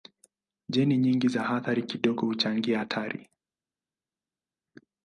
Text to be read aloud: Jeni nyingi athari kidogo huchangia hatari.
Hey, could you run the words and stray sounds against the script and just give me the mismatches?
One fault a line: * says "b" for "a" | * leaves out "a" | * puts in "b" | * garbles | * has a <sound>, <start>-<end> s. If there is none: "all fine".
* puts in "za"